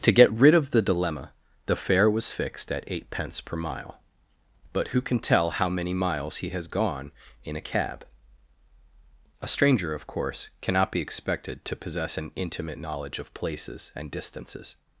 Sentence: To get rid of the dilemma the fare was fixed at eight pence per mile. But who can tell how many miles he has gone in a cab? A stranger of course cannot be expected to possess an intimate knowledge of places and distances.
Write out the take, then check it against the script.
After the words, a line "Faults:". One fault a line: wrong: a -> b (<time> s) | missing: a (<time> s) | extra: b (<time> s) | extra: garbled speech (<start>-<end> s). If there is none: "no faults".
To get rid of the dilemma the fare was fixed at eight pence per mile. But who can tell how many miles he has gone in a cab? A stranger of course cannot be expected to possess an intimate knowledge of places and distances.
Faults:
no faults